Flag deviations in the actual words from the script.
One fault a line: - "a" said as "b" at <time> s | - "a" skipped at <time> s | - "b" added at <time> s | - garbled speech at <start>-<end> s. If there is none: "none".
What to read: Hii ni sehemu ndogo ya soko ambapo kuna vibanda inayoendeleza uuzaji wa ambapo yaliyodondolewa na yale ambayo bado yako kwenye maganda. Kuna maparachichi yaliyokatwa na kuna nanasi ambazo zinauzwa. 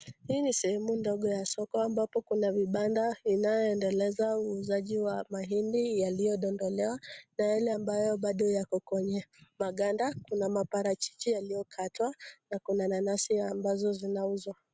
- "ambapo" said as "mahindi" at 5.3 s